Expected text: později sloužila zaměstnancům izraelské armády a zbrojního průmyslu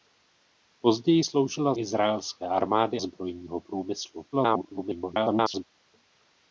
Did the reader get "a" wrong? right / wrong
wrong